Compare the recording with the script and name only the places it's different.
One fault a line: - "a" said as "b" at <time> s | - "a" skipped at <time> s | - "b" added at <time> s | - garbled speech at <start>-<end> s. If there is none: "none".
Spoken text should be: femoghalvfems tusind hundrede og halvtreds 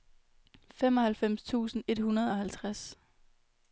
- "et" added at 1.9 s